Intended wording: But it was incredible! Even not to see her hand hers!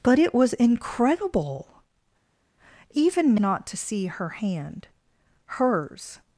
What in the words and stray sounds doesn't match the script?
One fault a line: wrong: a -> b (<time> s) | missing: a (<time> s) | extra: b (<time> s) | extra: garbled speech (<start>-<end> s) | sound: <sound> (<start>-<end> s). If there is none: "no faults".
no faults